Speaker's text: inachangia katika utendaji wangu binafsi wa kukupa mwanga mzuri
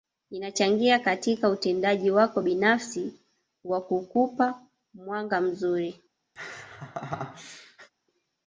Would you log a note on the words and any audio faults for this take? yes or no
yes